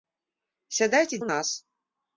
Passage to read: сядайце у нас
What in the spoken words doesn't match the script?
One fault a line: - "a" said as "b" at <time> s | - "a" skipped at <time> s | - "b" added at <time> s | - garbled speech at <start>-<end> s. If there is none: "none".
none